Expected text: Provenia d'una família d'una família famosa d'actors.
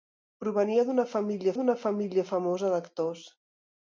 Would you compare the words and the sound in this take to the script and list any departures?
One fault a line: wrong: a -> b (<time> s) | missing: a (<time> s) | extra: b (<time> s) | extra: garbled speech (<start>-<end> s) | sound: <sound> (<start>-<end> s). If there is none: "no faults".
no faults